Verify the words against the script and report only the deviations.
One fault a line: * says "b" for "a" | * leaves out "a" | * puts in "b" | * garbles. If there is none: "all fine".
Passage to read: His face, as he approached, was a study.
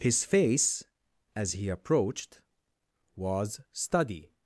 * leaves out "a"